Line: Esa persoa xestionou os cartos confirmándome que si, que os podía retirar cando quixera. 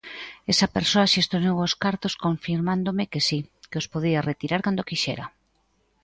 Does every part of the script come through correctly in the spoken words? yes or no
yes